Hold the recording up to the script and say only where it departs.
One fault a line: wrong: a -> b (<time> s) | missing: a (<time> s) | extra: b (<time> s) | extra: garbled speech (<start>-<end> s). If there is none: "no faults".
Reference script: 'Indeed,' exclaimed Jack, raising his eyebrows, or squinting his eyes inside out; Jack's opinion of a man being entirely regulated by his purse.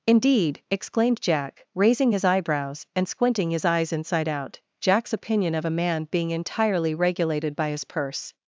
wrong: or -> and (2.9 s)